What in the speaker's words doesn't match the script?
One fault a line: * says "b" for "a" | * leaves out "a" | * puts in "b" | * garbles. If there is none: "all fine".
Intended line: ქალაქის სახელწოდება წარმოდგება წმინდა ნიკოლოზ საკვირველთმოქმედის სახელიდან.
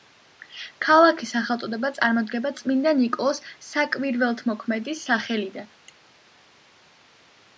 all fine